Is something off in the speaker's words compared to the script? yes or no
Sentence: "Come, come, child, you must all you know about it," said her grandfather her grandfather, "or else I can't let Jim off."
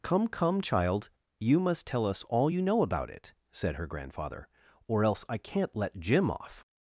yes